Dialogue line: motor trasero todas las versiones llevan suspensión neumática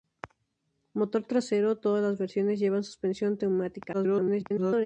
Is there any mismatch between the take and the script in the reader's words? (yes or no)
yes